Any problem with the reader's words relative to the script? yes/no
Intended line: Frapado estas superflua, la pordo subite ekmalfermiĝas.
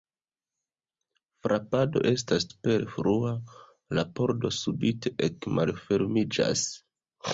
no